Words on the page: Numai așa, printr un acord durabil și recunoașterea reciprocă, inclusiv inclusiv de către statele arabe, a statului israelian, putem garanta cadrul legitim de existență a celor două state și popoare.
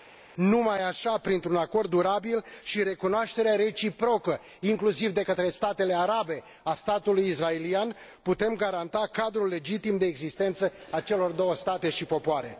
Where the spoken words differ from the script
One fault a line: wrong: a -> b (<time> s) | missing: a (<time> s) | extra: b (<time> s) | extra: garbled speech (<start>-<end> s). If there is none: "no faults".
missing: inclusiv (5.1 s)